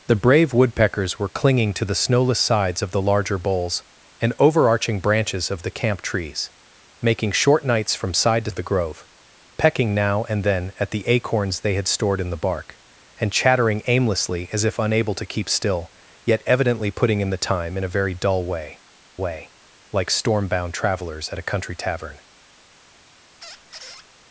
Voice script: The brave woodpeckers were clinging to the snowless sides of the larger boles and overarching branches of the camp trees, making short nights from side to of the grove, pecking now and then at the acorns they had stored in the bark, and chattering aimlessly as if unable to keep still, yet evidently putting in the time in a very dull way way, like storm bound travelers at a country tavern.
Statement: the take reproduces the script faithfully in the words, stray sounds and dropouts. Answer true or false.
false